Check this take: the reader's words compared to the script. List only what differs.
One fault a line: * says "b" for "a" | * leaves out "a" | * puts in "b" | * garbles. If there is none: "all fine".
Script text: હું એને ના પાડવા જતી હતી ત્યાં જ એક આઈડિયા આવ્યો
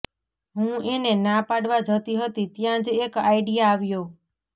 all fine